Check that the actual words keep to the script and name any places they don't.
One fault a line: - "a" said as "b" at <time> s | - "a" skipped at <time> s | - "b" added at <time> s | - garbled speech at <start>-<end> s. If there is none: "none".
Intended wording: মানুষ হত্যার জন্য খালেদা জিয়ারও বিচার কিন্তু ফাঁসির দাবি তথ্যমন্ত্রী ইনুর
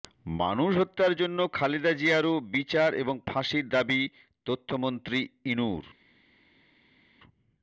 - "কিন্তু" said as "এবং" at 3.0 s